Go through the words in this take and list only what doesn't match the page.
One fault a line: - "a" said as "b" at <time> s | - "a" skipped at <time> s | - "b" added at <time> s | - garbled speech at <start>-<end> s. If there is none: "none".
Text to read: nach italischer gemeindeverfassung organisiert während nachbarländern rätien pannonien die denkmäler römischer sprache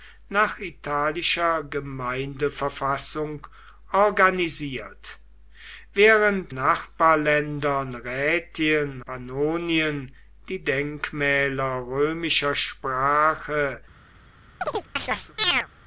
none